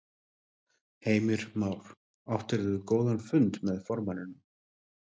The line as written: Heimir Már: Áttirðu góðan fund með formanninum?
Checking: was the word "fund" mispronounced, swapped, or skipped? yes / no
no